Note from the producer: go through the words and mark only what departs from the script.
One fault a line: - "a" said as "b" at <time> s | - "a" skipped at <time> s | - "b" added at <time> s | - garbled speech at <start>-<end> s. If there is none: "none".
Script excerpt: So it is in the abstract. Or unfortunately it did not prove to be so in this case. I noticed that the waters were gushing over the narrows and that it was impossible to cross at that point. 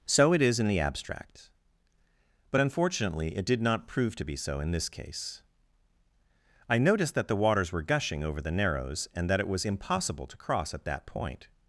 - "Or" said as "But" at 2.5 s